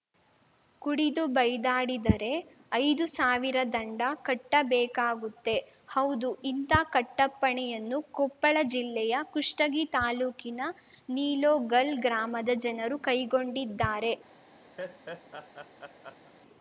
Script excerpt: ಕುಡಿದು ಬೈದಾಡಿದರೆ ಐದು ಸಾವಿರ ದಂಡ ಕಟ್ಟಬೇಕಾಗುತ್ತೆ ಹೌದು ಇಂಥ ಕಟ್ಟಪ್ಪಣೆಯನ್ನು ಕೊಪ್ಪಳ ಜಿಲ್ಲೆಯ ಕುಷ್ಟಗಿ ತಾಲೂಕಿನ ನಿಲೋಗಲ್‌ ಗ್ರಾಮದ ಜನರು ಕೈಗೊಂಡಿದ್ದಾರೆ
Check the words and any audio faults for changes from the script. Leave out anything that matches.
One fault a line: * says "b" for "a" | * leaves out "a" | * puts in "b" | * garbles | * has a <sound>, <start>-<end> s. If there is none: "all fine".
* has a laugh, 14.8-16.3 s